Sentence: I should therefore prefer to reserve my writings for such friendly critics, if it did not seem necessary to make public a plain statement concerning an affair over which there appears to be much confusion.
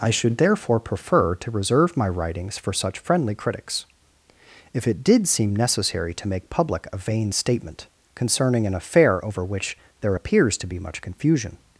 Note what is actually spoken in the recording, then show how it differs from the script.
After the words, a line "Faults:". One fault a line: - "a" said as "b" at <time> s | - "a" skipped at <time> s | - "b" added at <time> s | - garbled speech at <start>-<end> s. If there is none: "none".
I should therefore prefer to reserve my writings for such friendly critics, if it did seem necessary to make public a vain statement concerning an affair over which there appears to be much confusion.
Faults:
- "not" skipped at 5.3 s
- "plain" said as "vain" at 7.0 s